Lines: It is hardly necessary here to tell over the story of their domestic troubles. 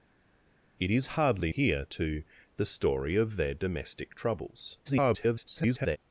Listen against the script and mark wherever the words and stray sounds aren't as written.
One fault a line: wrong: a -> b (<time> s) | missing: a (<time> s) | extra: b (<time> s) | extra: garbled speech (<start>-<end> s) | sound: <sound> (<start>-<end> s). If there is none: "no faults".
missing: necessary (1.5 s)
missing: tell over (2.2 s)
extra: garbled speech (4.8-6.0 s)